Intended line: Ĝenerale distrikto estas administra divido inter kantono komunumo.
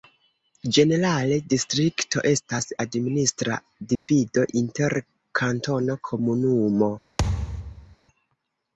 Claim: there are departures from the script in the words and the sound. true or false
true